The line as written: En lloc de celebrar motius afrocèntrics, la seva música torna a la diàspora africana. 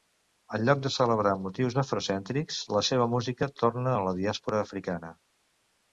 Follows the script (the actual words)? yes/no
yes